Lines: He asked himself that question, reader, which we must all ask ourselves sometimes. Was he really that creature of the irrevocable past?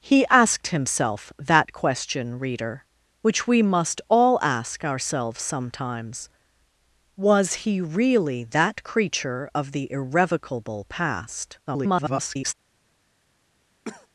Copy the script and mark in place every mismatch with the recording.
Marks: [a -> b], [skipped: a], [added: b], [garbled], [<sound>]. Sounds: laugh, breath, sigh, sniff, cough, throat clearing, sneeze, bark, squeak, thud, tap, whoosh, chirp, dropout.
He asked himself that question, reader, which we must all ask ourselves sometimes. Was he really that creature of the irrevocable past? [garbled] [cough]